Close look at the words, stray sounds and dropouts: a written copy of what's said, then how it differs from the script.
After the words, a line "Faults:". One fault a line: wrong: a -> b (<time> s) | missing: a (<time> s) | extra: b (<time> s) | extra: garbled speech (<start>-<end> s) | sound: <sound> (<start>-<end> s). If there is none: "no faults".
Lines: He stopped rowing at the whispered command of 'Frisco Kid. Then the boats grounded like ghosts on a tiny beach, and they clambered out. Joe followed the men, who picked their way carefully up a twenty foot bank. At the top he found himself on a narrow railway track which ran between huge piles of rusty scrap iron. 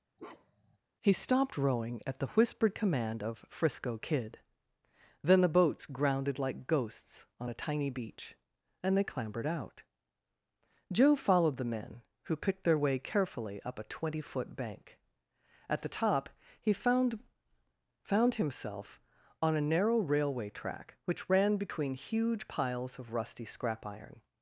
He stopped rowing at the whispered command of 'Frisco Kid. Then the boats grounded like ghosts on a tiny beach, and they clambered out. Joe followed the men, who picked their way carefully up a twenty foot bank. At the top he found found himself on a narrow railway track which ran between huge piles of rusty scrap iron.
Faults:
sound: bark (0.2-0.8 s)
extra: found (18.0 s)